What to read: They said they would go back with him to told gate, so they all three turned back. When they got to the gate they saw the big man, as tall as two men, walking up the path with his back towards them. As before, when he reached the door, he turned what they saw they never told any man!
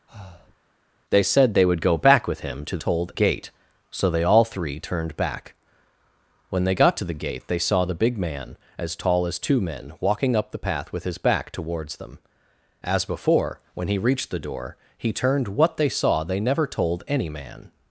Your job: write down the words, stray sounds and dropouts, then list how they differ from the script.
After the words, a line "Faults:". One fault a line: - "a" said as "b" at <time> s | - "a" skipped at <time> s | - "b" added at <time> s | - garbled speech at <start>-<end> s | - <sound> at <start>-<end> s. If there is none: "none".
They said they would go back with him to told gate, so they all three turned back. When they got to the gate they saw the big man, as tall as two men, walking up the path with his back towards them. As before, when he reached the door, he turned what they saw they never told any man!
Faults:
- breath at 0.1-0.6 s